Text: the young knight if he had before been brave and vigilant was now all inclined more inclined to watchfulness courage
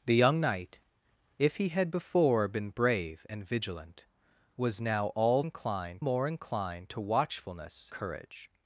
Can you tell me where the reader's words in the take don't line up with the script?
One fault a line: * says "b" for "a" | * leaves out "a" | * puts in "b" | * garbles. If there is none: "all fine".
all fine